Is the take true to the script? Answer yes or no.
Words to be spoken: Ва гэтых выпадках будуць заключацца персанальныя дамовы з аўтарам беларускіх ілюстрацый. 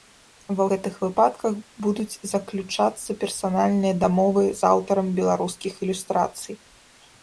yes